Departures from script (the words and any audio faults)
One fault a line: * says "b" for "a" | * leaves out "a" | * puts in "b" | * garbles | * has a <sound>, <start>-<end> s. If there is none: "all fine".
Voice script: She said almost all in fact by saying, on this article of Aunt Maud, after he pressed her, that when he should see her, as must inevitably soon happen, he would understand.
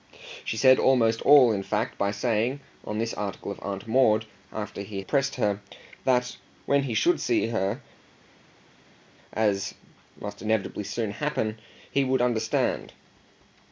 all fine